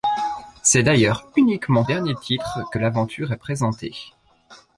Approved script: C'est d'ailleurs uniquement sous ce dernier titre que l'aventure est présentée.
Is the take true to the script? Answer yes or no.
no